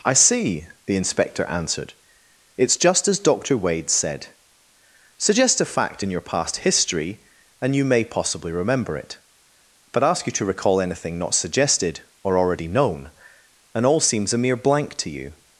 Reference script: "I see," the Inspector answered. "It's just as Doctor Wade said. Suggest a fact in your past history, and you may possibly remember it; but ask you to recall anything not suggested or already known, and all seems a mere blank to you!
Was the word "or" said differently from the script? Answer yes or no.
no